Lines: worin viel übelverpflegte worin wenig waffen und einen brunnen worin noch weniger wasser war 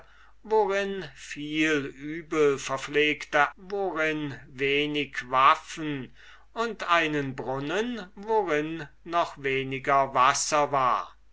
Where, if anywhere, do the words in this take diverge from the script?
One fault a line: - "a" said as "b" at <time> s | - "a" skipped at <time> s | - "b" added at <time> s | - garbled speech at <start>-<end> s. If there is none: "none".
none